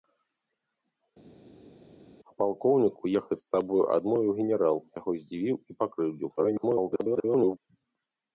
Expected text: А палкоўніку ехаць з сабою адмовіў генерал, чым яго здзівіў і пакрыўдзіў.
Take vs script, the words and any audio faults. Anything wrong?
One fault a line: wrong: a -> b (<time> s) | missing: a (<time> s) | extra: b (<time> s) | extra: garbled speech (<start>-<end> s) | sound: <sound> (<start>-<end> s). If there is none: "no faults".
missing: чым (4.8 s)
extra: garbled speech (6.4-7.6 s)